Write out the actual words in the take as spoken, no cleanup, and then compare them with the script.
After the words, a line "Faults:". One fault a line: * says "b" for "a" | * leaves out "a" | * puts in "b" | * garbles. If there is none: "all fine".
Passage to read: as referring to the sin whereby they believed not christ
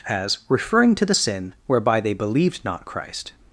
as referring to the sin whereby they believed not christ
Faults:
all fine